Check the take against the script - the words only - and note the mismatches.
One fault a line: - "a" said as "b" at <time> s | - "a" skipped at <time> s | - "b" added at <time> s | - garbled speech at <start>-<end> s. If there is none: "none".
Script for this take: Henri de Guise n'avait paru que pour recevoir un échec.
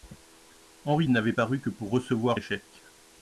- "de Guise" skipped at 1.1 s
- "un" skipped at 2.4 s